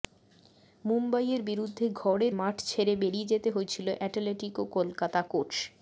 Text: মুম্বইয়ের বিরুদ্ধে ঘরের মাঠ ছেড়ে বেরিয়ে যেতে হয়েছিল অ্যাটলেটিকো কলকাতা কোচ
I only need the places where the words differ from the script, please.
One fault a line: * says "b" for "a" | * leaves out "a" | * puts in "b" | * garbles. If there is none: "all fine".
all fine